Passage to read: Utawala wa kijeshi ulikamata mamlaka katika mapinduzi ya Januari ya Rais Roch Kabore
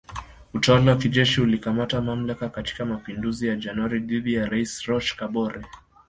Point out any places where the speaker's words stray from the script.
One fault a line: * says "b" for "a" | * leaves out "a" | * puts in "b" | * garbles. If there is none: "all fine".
* puts in "dhidi"